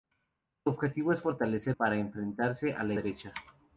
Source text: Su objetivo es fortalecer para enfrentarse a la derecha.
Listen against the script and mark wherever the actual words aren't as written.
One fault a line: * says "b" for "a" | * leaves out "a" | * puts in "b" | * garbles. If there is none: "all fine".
all fine